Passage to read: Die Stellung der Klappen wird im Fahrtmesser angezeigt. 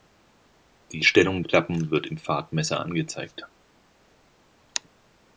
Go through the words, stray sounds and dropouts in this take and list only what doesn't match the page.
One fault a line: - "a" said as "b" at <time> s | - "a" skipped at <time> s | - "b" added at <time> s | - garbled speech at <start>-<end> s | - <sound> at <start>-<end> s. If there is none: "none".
- "der" skipped at 1.4 s